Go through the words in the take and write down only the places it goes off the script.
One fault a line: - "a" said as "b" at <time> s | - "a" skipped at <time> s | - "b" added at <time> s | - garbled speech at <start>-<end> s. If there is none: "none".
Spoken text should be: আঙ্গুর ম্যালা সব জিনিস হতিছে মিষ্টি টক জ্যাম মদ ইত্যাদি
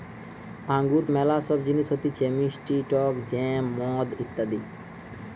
none